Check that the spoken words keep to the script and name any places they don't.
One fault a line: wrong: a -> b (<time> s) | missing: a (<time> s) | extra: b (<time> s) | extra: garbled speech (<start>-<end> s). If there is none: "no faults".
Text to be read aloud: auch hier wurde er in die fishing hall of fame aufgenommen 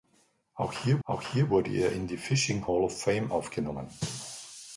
extra: auch hier (1.0 s)